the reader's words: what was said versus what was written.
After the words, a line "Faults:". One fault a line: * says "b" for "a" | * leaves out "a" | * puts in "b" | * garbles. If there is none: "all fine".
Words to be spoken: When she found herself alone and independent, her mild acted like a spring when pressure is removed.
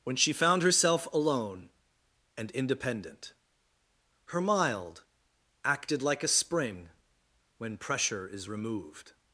When she found herself alone and independent, her mild acted like a spring when pressure is removed.
Faults:
all fine